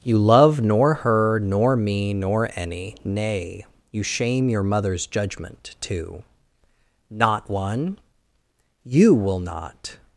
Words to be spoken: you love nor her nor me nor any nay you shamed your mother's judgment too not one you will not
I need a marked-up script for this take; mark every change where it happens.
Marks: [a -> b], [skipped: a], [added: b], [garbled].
you love nor her nor me nor any nay you [shamed -> shame] your mother's judgment too not one you will not